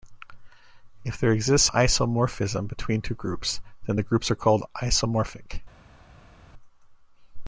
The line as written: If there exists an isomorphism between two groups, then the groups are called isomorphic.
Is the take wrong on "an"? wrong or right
wrong